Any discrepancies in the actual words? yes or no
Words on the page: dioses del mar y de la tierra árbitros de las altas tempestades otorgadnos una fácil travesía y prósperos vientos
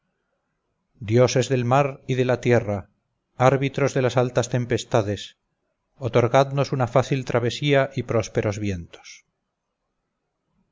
no